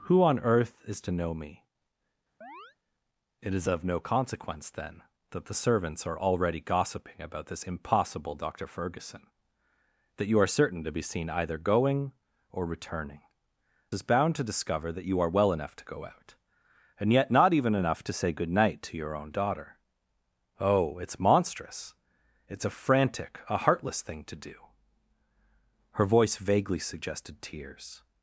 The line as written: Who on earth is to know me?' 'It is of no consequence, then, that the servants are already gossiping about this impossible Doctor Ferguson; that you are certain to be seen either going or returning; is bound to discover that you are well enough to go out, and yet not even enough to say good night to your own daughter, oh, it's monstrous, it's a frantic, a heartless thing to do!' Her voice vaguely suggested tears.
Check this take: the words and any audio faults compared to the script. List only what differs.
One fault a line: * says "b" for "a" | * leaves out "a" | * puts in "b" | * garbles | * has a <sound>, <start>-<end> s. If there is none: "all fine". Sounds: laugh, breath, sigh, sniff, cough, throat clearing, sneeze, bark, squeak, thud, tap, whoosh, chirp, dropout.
* has a chirp, 2.4-2.8 s